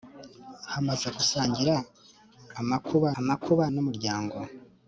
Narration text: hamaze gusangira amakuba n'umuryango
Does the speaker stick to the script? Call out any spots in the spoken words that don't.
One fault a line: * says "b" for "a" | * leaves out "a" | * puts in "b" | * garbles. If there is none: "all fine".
* puts in "amakuba"